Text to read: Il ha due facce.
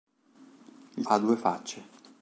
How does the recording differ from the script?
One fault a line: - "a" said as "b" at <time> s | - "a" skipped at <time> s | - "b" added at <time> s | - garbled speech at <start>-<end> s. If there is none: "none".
none